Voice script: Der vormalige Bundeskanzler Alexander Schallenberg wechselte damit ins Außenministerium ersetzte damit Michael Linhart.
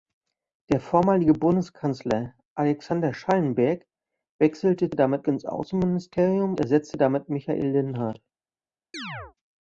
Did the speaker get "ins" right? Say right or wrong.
right